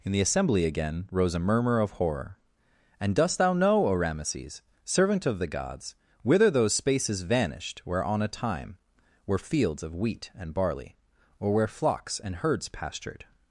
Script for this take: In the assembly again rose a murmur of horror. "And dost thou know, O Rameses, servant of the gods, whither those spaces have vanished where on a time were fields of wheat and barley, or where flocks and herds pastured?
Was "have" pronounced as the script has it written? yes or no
no